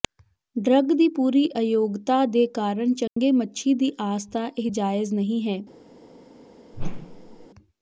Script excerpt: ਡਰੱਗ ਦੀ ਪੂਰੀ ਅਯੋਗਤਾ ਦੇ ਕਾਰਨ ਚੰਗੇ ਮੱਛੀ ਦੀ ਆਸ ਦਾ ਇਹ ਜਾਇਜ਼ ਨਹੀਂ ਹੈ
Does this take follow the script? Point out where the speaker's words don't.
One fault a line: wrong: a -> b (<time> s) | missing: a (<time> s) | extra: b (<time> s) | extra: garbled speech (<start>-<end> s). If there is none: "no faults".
no faults